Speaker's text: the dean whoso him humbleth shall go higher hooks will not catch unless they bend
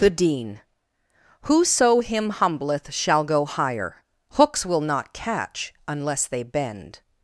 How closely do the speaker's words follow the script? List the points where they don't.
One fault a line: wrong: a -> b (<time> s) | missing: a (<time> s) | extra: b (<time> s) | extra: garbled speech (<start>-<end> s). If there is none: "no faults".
no faults